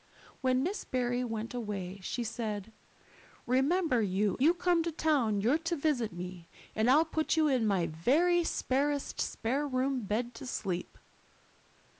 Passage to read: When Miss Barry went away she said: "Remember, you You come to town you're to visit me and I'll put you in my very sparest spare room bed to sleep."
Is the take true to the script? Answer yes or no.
yes